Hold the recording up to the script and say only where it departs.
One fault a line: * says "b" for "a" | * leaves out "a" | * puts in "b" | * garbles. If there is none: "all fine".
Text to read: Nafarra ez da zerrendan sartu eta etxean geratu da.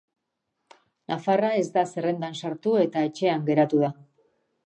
all fine